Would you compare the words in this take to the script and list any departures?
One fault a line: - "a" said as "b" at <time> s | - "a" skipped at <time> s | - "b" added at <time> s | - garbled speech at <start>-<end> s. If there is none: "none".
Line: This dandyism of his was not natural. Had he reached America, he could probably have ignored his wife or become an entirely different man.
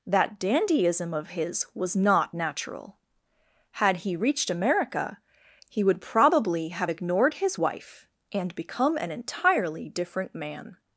- "This" said as "That" at 0.1 s
- "could" said as "would" at 5.8 s
- "or" said as "and" at 8.3 s